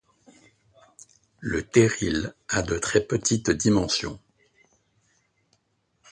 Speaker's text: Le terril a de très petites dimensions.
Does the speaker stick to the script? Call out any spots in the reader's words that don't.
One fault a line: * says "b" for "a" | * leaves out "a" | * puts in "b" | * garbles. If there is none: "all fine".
all fine